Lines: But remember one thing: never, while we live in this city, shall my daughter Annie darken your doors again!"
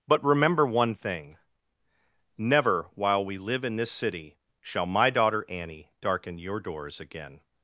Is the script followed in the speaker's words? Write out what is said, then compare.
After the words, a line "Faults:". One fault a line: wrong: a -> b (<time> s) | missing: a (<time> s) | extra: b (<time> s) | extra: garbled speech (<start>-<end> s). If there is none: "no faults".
But remember one thing: never, while we live in this city, shall my daughter Annie darken your doors again!"
Faults:
no faults